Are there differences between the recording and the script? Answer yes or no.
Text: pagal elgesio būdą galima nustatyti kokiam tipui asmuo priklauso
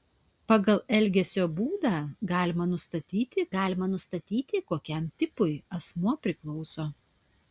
yes